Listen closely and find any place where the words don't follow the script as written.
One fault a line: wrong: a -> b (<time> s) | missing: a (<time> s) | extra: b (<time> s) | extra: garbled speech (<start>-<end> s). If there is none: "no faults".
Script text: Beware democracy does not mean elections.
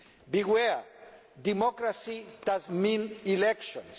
missing: not (2.7 s)